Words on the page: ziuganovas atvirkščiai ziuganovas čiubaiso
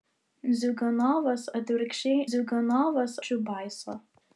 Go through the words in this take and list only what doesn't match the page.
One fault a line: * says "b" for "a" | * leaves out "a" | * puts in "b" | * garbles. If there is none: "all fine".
all fine